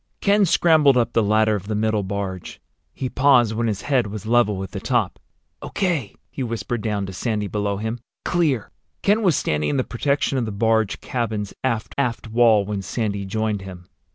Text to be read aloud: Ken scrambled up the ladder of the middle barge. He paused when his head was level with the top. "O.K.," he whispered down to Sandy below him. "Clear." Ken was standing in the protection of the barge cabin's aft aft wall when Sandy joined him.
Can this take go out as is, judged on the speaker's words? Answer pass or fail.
pass